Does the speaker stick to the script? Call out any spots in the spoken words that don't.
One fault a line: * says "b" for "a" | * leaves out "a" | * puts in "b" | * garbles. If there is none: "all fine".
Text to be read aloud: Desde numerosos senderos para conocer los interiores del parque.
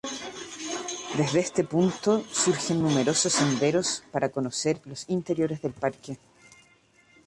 * puts in "este punto surgen"